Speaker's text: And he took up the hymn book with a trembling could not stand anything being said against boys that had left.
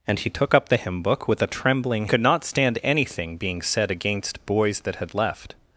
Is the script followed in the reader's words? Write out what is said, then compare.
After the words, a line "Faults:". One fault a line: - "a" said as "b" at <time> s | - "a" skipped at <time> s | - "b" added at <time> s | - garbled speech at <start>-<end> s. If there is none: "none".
And he took up the hymn book with a trembling could not stand anything being said against boys that had left.
Faults:
none